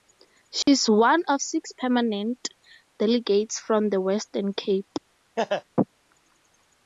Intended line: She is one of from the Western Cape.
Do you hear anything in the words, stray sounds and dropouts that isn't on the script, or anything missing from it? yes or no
yes